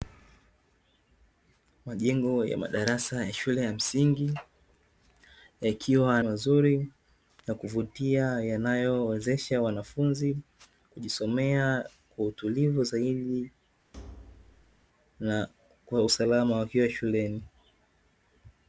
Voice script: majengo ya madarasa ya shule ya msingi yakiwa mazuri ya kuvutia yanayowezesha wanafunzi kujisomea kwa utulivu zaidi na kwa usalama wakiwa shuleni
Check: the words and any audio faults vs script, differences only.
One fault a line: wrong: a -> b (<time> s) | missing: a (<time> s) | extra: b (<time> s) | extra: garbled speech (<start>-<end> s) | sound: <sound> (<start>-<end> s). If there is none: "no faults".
sound: thud (13.9-14.9 s)